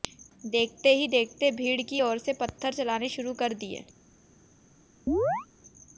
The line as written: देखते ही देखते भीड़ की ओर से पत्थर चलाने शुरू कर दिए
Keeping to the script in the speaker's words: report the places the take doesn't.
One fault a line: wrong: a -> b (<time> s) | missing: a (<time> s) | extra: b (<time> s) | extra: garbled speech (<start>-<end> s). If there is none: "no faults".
no faults